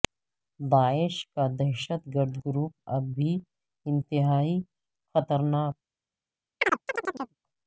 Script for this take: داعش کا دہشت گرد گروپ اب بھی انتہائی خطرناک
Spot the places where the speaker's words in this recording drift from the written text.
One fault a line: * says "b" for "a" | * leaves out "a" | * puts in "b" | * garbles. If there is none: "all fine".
all fine